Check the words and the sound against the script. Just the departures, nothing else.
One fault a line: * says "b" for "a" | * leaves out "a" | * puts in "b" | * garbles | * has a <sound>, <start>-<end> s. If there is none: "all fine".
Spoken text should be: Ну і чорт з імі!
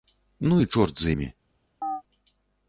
* has a chirp, 1.8-2.0 s